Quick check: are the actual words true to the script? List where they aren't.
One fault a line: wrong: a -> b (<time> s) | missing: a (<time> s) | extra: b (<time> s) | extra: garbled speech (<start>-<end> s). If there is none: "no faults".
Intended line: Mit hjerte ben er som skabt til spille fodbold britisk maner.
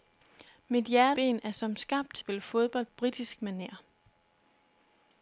no faults